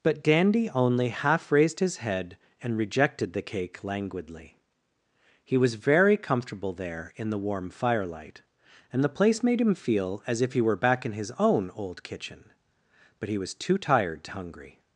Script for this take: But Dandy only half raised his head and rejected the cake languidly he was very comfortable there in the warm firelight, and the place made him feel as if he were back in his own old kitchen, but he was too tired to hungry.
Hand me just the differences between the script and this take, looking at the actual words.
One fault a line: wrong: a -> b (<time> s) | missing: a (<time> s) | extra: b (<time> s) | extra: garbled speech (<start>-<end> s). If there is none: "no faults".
no faults